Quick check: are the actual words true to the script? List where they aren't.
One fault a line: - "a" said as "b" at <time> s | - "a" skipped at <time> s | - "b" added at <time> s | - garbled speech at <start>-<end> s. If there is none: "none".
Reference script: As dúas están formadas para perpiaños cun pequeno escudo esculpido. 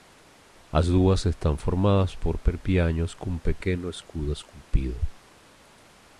- "para" said as "por" at 2.2 s